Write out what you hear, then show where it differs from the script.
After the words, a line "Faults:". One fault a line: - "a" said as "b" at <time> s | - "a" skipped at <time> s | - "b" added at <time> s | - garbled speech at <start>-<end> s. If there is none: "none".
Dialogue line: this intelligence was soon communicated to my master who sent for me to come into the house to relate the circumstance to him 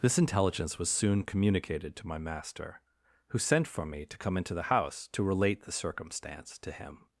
this intelligence was soon communicated to my master who sent for me to come into the house to relate the circumstance to him
Faults:
none